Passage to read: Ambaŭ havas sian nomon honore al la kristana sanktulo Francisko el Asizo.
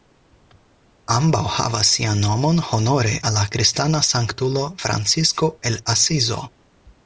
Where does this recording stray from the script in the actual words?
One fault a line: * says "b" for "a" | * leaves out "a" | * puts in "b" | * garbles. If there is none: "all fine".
all fine